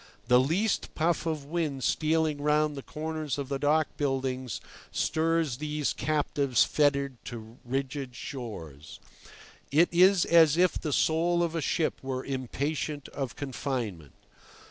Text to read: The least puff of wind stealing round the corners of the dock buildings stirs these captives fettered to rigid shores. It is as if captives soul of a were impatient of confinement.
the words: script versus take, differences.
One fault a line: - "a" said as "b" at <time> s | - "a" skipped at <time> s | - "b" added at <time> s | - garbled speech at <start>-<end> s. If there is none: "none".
- "captives" said as "the" at 10.8 s
- "ship" added at 11.6 s